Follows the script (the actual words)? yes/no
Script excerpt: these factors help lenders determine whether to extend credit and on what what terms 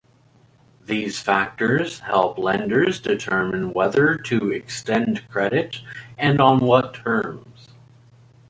no